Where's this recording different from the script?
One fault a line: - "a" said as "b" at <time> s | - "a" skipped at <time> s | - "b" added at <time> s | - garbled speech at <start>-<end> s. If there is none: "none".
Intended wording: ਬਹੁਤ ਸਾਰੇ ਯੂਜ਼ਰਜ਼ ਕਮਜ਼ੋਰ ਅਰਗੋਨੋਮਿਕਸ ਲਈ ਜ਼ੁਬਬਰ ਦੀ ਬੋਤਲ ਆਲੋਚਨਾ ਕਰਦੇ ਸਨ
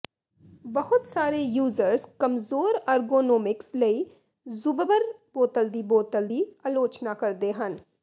- "ਬੋਤਲ" added at 5.3 s
- "ਦੀ" added at 6.2 s
- "ਸਨ" said as "ਹਨ" at 7.5 s